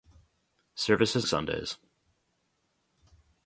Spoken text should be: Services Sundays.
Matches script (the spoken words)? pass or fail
pass